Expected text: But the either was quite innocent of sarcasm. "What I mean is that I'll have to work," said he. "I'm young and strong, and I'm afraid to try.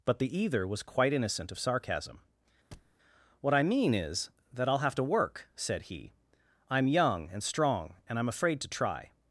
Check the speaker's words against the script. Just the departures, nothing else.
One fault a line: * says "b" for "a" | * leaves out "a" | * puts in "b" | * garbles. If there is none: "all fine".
all fine